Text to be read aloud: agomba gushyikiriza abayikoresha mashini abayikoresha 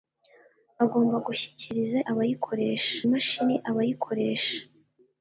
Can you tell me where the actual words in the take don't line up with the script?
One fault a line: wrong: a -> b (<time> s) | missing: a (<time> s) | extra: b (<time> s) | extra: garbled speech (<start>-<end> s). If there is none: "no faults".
no faults